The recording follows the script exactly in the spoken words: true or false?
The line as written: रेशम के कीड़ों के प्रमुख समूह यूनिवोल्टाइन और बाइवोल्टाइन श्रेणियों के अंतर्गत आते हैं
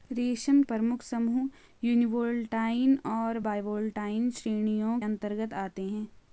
false